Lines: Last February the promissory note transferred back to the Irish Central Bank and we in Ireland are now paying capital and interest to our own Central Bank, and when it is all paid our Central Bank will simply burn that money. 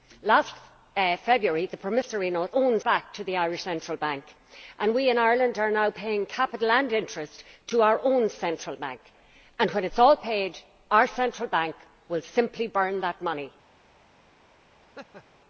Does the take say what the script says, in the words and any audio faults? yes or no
no